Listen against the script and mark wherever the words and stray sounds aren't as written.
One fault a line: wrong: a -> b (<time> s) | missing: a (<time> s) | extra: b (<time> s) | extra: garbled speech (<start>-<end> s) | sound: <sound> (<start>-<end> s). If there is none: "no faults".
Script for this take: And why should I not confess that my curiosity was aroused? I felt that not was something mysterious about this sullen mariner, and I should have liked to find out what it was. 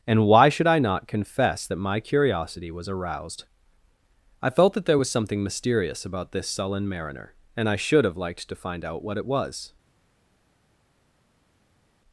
wrong: not -> there (4.8 s)